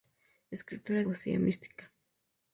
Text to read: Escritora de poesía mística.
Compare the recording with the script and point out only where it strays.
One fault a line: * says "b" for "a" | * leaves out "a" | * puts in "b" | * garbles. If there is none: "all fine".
* leaves out "de"